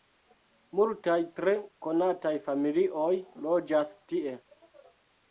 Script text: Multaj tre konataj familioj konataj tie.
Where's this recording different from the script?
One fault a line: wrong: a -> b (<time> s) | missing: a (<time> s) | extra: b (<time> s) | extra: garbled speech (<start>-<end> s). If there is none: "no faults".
wrong: konataj -> loĝas (3.5 s)